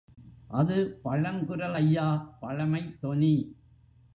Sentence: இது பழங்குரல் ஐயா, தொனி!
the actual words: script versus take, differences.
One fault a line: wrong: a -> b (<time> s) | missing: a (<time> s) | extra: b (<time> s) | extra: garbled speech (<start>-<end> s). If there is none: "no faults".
wrong: இது -> அது (0.5 s)
extra: பழமைத் (2.4 s)